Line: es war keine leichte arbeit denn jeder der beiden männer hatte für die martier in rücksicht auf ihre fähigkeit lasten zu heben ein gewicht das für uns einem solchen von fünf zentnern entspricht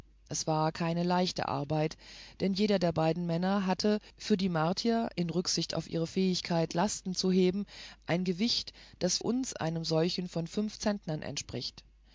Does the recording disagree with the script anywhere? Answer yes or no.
yes